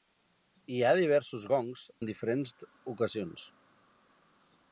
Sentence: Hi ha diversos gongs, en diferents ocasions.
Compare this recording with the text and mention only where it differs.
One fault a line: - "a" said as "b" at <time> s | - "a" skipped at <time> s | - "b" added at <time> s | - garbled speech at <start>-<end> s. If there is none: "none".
none